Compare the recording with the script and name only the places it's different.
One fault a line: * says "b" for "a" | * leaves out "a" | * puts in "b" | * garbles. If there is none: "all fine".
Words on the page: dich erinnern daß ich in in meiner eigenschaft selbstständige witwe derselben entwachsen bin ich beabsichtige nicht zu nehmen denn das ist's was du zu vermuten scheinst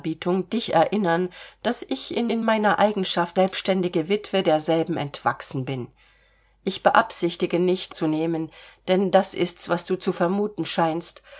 all fine